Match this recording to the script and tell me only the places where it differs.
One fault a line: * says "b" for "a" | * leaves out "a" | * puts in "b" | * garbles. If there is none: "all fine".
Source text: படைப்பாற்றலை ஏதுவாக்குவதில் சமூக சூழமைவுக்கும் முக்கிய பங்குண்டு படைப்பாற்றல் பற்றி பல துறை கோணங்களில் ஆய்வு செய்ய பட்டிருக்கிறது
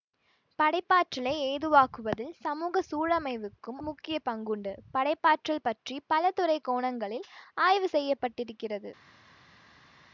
all fine